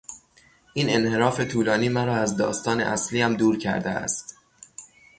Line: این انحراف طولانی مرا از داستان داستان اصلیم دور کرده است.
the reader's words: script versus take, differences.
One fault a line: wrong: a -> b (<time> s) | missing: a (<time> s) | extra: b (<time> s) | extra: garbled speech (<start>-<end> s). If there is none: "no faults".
missing: داستان (2.8 s)